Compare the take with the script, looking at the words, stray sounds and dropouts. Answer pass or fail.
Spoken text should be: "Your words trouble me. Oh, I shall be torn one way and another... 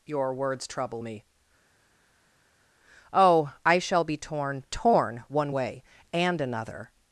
fail